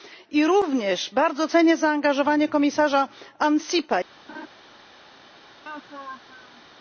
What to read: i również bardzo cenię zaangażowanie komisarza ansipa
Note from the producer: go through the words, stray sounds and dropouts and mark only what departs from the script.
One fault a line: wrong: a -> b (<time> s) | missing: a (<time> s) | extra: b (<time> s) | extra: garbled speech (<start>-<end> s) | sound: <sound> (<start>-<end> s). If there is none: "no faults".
sound: laugh (4.3-4.5 s)
sound: laugh (5.6-6.6 s)